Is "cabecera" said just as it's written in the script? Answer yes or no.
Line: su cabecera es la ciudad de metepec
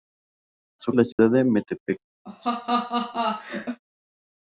no